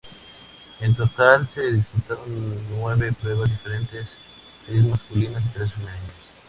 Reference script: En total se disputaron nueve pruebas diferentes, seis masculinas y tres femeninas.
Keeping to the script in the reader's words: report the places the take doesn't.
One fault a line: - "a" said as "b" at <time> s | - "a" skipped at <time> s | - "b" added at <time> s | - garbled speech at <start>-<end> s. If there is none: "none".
none